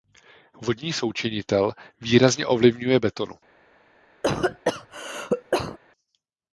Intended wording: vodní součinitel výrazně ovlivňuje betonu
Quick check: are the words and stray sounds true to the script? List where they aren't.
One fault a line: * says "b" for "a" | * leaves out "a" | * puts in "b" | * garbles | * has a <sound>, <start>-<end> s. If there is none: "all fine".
* has a cough, 4.2-5.8 s